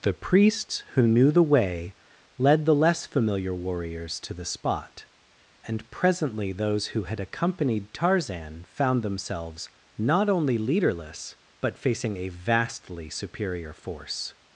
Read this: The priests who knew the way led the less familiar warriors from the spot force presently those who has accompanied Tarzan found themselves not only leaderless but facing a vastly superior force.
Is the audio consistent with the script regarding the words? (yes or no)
no